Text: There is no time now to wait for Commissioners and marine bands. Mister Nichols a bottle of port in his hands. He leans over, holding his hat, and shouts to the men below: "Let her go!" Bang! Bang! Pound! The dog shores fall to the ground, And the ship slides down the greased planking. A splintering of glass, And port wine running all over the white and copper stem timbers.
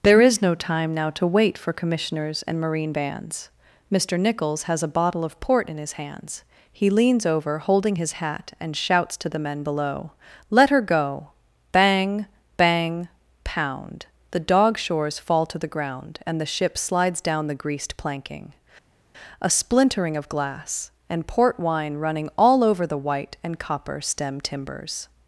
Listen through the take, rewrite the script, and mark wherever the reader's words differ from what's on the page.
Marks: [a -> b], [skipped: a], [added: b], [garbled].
There is no time now to wait for Commissioners and marine bands. Mister Nichols [added: has] a bottle of port in his hands. He leans over, holding his hat, and shouts to the men below: "Let her go!" Bang! Bang! Pound! The dog shores fall to the ground, And the ship slides down the greased planking. A splintering of glass, And port wine running all over the white and copper stem timbers.